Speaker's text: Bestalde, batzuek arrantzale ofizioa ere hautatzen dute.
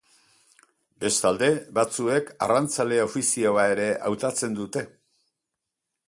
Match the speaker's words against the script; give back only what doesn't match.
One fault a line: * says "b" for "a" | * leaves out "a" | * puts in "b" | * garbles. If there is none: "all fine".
all fine